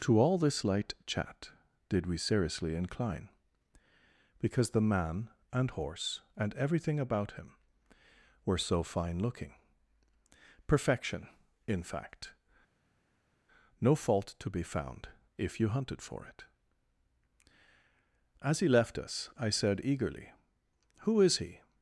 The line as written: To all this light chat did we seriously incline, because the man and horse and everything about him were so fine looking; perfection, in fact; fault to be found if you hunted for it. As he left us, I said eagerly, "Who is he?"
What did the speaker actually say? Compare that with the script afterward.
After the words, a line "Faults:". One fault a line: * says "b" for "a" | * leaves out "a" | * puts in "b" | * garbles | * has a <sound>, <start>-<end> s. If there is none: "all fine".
To all this light chat did we seriously incline, because the man and horse and everything about him were so fine looking; perfection, in fact; no fault to be found if you hunted for it. As he left us, I said eagerly, "Who is he?"
Faults:
* puts in "no"